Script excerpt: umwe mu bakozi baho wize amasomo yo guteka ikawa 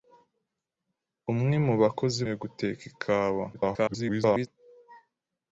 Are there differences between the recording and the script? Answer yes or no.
yes